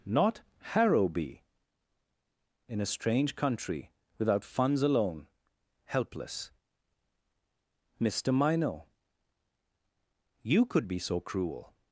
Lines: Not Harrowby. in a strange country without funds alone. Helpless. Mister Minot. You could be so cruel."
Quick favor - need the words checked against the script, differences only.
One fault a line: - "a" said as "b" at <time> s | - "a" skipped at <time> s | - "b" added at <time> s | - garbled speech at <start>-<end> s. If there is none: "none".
none